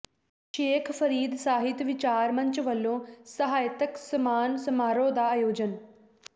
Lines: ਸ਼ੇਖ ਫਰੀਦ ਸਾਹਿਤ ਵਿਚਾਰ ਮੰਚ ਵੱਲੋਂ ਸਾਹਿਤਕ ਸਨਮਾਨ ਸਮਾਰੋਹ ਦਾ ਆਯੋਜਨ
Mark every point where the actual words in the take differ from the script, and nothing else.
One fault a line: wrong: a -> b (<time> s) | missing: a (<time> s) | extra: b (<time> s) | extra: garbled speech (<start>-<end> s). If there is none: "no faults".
no faults